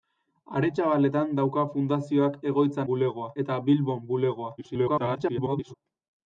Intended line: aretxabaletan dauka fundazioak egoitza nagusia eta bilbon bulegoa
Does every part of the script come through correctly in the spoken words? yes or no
no